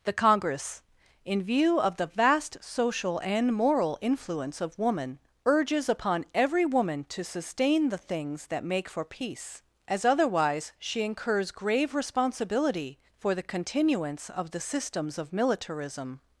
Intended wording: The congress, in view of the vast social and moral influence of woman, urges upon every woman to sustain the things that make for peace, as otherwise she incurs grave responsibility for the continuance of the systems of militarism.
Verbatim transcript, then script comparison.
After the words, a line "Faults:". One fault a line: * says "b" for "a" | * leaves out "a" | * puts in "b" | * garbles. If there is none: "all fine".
The congress, in view of the vast social and moral influence of woman, urges upon every woman to sustain the things that make for peace, as otherwise she incurs grave responsibility for the continuance of the systems of militarism.
Faults:
all fine